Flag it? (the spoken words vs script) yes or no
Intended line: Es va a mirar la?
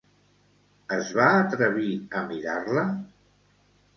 yes